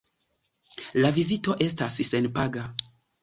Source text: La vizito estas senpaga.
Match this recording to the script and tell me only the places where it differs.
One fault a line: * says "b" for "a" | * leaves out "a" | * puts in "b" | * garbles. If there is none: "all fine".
all fine